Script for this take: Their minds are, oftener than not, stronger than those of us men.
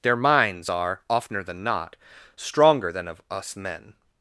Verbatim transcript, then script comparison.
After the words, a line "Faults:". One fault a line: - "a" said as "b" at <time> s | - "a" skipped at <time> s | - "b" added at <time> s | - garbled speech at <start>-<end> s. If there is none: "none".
Their minds are, oftener than not, stronger than of us men.
Faults:
- "those" skipped at 3.1 s